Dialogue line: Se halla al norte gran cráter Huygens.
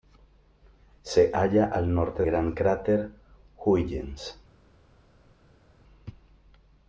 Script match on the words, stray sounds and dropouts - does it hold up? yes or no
yes